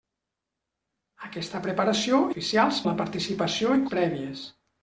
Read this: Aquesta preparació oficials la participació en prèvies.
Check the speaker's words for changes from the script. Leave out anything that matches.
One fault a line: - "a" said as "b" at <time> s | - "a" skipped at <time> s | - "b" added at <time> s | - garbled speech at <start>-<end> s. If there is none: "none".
none